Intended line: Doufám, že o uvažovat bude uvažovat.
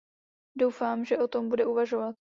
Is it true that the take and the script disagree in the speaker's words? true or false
true